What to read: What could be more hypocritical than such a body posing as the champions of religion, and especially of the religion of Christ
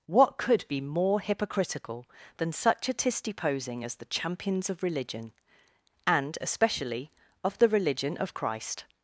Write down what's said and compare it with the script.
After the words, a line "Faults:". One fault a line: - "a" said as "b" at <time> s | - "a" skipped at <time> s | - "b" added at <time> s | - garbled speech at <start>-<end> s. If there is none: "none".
What could be more hypocritical than such a tisty posing as the champions of religion, and especially of the religion of Christ
Faults:
- "body" said as "tisty" at 2.9 s